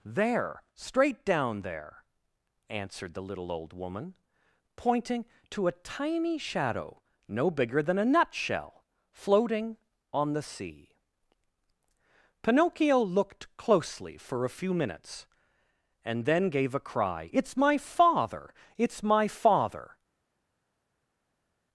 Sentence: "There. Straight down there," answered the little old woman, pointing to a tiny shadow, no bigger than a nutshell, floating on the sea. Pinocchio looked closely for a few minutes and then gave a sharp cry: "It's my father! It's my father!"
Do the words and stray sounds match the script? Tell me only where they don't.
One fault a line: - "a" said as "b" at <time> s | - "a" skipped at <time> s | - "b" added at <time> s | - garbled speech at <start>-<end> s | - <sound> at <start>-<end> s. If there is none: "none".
- "sharp" skipped at 16.8 s